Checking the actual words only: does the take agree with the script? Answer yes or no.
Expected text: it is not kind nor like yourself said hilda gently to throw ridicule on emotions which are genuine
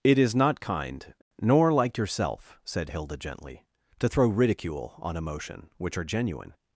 no